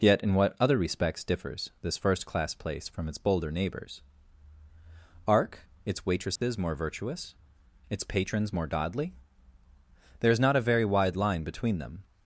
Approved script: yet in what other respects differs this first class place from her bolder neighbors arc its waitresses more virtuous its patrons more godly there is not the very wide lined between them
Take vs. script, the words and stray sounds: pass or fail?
fail